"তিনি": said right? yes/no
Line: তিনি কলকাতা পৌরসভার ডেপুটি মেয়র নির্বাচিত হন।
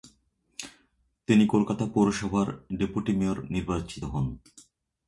yes